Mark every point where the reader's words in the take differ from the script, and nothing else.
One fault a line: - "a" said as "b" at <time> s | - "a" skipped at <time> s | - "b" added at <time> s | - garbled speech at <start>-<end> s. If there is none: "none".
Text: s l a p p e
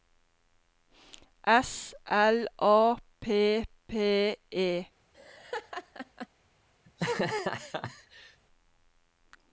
none